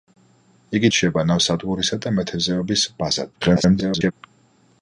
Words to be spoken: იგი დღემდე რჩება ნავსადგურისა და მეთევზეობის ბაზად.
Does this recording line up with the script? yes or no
no